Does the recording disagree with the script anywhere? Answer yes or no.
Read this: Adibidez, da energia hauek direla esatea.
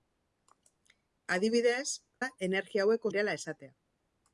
no